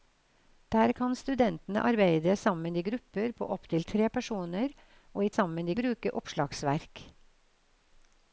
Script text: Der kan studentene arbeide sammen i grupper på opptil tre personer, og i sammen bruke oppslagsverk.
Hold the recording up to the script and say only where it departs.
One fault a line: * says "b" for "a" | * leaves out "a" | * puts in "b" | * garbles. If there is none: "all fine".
all fine